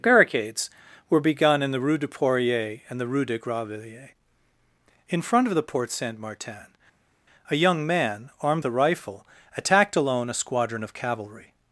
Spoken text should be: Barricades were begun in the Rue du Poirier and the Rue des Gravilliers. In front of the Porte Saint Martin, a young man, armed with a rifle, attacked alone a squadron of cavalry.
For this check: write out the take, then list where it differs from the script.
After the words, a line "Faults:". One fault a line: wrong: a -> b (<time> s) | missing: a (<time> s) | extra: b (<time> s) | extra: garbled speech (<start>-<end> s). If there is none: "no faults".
Barricades were begun in the Rue du Poirier and the Rue des Gravilliers. In front of the Porte Saint Martin, a young man, armed a rifle, attacked alone a squadron of cavalry.
Faults:
missing: with (8.6 s)